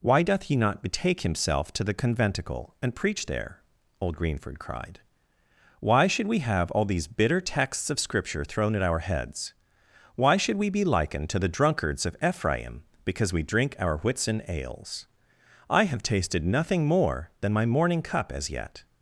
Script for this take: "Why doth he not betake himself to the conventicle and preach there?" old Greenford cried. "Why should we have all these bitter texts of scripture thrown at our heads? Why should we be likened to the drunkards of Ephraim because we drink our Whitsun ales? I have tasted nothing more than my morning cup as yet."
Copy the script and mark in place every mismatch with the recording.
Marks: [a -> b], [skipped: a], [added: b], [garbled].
"Why doth he not betake himself to the conventicle and preach there?" old Greenford cried. "Why should we have all these bitter texts of scripture thrown at our heads? Why should we be likened to the drunkards of Ephraim because we drink our Whitsun ales? I have tasted nothing more than my morning cup as yet."